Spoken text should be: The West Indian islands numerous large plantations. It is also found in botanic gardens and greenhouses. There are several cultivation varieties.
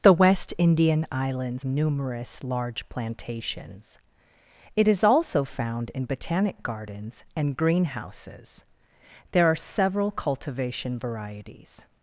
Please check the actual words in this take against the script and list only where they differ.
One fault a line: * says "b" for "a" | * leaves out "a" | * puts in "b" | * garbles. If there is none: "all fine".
all fine